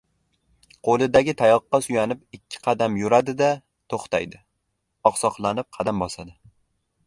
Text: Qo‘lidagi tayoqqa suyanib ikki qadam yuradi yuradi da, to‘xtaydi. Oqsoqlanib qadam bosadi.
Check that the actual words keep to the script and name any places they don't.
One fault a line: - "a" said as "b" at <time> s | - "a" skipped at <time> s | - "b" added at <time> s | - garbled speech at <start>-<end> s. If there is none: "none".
- "yuradi" skipped at 3.4 s